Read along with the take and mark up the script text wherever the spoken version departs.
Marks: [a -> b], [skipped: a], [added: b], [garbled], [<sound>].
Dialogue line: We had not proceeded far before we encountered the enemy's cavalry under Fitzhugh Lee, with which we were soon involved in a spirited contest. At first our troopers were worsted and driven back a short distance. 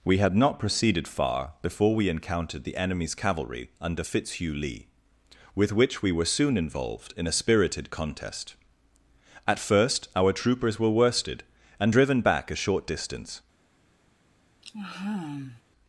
We had not proceeded far before we encountered the enemy's cavalry under Fitzhugh Lee, with which we were soon involved in a spirited contest. At first our troopers were worsted and driven back a short distance. [sigh]